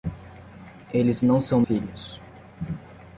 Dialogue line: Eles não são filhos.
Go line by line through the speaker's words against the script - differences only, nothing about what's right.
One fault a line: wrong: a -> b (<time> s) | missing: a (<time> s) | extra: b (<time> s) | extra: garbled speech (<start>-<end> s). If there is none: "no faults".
no faults